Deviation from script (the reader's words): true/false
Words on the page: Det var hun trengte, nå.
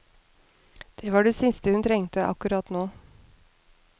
true